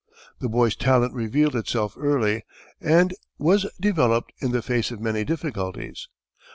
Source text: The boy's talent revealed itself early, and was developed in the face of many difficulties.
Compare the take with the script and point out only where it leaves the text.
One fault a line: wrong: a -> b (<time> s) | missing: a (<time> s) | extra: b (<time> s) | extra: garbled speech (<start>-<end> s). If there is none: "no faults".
no faults